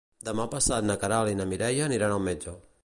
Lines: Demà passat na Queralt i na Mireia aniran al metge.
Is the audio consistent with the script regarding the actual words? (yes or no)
yes